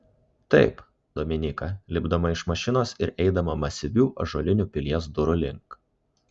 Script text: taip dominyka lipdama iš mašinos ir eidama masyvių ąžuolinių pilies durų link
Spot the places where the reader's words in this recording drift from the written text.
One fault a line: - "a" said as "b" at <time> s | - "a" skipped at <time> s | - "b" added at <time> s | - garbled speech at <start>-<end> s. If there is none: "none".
none